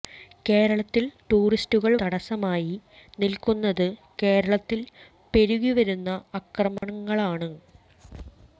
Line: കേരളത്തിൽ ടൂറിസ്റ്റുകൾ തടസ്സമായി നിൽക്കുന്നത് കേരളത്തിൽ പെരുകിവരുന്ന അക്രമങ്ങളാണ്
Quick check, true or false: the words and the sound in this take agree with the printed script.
false